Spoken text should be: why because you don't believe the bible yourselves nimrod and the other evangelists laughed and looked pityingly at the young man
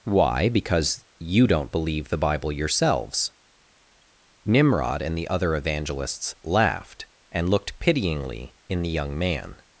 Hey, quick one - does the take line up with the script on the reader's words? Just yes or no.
no